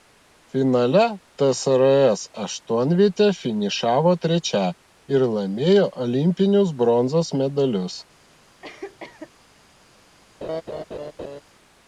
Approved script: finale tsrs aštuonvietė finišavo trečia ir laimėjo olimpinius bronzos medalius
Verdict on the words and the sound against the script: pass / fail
fail